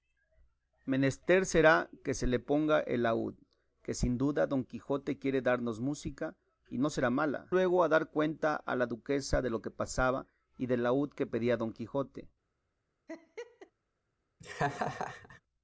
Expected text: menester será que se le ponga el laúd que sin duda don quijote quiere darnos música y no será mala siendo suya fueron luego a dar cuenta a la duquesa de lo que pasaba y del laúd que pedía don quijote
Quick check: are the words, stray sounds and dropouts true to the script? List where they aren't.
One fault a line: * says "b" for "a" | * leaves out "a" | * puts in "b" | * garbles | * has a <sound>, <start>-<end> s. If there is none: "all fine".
* leaves out "siendo suya fueron"
* has a laugh, 13.1-13.7 s
* has a laugh, 14.4-15.4 s